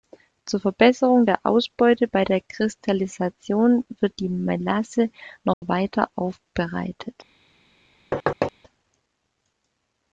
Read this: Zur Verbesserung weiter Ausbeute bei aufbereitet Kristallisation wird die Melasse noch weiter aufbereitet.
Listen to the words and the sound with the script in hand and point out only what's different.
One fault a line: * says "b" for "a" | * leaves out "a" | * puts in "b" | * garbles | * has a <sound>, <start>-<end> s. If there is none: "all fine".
* says "der" for "weiter"
* says "der" for "aufbereitet"
* has a dropout, 5.5-5.6 s
* has a thud, 8.1-8.5 s